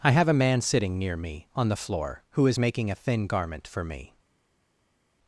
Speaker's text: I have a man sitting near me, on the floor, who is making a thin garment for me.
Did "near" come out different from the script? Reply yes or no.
no